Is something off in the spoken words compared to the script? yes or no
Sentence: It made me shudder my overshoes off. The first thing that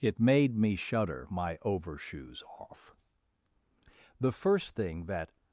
no